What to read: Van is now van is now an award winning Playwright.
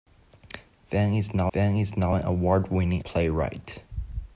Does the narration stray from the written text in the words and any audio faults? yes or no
no